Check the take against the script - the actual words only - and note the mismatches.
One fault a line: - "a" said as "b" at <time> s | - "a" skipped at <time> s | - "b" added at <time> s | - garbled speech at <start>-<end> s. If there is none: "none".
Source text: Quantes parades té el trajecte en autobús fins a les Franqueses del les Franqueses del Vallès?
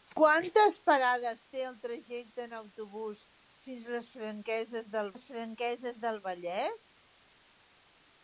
none